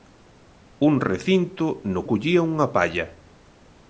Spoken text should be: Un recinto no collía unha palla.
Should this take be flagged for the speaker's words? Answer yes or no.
no